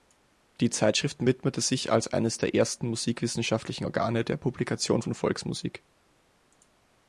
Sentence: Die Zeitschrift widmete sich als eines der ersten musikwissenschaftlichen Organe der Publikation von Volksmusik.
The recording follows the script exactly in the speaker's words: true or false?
true